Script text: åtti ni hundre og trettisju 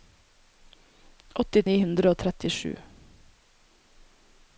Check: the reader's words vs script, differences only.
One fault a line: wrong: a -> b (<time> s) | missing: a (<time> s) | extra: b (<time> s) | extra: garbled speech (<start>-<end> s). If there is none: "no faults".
no faults